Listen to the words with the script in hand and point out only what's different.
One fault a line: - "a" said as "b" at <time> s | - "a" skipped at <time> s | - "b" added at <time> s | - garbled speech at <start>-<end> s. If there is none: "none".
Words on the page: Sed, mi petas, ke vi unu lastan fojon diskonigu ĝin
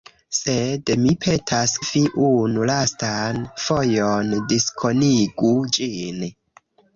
- "ke" skipped at 1.7 s